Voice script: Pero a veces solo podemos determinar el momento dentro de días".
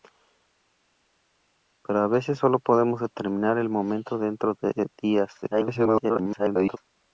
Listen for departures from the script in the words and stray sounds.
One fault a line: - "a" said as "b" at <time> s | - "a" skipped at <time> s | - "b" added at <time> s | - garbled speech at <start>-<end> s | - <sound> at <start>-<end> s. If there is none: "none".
- garbled speech at 5.4-6.8 s